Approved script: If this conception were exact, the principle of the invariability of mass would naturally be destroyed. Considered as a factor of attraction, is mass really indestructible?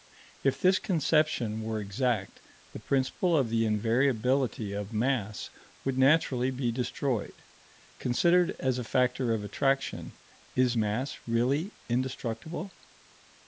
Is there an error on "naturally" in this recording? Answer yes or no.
no